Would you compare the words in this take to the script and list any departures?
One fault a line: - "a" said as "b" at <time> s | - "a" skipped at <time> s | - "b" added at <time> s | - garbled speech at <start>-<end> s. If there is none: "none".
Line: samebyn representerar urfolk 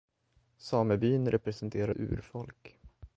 none